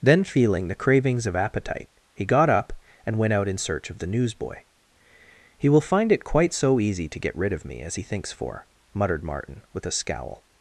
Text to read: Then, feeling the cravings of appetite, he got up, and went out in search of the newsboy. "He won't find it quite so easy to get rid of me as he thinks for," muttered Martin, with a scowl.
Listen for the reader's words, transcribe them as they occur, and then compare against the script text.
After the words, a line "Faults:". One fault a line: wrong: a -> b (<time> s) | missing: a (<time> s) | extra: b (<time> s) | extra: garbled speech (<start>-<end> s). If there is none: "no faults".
Then, feeling the cravings of appetite, he got up, and went out in search of the newsboy. "He will find it quite so easy to get rid of me as he thinks for," muttered Martin, with a scowl.
Faults:
wrong: won't -> will (5.7 s)